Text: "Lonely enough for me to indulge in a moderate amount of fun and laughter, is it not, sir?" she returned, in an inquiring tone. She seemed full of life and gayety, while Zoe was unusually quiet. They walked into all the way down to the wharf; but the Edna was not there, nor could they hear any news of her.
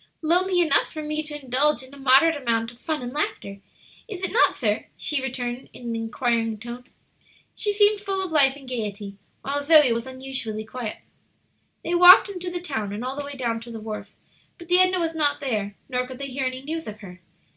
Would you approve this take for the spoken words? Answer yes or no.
no